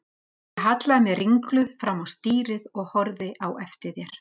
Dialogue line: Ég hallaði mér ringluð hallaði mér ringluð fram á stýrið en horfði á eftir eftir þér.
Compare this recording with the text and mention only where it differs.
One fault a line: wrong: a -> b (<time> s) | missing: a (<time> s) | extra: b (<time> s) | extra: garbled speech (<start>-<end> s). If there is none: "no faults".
missing: hallaði mér ringluð (1.7 s)
wrong: en -> og (2.8 s)
missing: eftir (4.0 s)